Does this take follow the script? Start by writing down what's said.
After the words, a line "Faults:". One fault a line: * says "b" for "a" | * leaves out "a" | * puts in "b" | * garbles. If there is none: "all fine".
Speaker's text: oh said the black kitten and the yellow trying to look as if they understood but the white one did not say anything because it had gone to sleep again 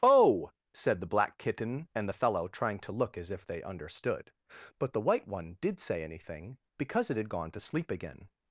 oh said the black kitten and the fellow trying to look as if they understood but the white one did say anything because it had gone to sleep again
Faults:
* says "fellow" for "yellow"
* leaves out "not"